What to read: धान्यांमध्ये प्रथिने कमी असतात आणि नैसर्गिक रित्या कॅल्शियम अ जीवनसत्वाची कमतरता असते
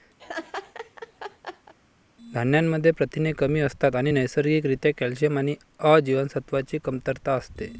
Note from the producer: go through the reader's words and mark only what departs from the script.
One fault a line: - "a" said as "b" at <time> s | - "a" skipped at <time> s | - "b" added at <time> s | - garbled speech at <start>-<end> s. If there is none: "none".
- "आणि" added at 5.4 s